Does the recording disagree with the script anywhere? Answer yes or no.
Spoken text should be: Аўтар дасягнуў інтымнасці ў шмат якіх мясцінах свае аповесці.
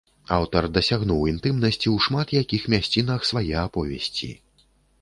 no